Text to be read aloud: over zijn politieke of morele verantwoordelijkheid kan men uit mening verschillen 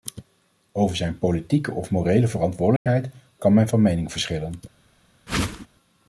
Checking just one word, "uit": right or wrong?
wrong